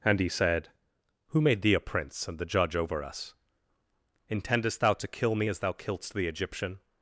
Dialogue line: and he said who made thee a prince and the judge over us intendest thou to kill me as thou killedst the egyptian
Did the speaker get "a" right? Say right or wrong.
right